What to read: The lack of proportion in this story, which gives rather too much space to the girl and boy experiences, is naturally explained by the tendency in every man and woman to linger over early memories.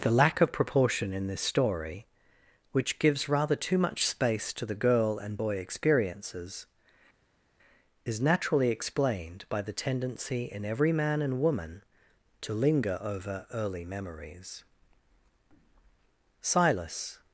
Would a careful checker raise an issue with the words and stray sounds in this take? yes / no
yes